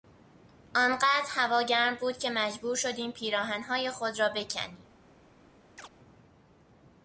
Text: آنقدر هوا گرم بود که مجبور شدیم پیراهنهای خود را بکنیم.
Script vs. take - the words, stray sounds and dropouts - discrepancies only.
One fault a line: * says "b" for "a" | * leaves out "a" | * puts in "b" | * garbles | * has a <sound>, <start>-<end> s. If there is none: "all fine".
* has a chirp, 5.8-5.9 s